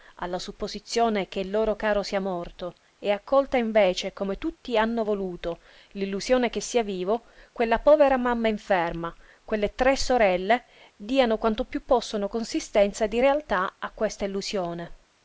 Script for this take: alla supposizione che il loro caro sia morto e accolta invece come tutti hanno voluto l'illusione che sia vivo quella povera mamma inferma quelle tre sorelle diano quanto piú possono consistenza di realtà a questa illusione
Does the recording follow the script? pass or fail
pass